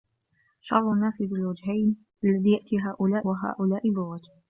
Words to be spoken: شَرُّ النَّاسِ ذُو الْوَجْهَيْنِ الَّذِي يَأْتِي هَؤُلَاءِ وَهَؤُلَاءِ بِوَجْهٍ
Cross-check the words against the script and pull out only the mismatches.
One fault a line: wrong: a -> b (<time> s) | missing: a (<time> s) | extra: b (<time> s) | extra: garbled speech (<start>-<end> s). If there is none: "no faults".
no faults